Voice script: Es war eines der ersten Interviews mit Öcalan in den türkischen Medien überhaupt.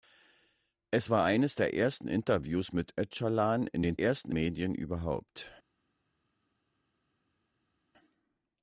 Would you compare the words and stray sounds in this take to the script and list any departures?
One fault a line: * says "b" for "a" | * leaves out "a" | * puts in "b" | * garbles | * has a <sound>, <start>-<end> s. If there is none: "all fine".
* says "ersten" for "türkischen"